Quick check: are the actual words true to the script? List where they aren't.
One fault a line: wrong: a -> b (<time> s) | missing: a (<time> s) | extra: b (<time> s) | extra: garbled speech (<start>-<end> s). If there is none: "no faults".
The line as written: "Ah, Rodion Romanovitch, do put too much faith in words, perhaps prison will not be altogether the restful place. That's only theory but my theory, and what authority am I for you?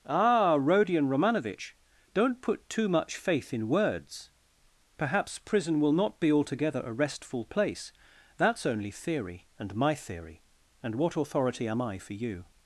wrong: do -> don't (2.1 s)
wrong: the -> a (6.8 s)
wrong: but -> and (9.6 s)